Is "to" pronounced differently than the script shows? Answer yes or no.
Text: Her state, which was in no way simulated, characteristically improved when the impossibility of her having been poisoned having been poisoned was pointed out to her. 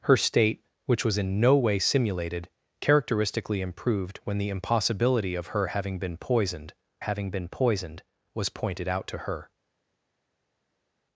no